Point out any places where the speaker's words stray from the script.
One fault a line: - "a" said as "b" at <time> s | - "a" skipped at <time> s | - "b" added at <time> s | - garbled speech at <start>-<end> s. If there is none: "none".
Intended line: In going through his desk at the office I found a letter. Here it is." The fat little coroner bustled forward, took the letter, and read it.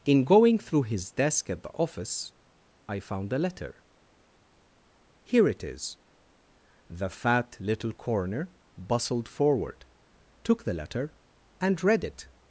none